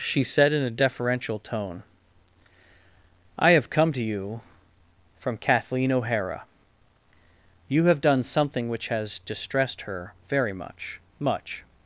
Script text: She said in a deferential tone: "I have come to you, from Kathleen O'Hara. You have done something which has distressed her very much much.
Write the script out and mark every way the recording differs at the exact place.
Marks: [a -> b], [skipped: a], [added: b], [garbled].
She said in a deferential tone: "I have come to you, from Kathleen O'Hara. You have done something which has distressed her very much much.